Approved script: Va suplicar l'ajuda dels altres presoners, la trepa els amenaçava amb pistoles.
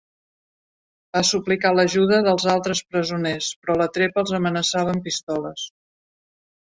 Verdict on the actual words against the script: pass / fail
fail